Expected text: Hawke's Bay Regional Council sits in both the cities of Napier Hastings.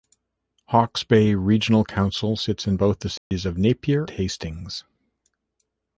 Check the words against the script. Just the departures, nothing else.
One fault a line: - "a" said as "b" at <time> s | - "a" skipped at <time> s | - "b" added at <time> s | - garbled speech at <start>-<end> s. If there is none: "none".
none